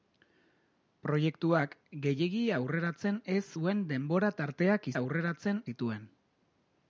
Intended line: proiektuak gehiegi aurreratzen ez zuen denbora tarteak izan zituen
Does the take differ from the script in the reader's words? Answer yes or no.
yes